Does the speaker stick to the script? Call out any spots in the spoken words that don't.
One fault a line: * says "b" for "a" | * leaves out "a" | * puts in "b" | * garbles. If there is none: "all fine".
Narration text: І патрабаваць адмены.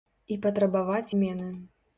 all fine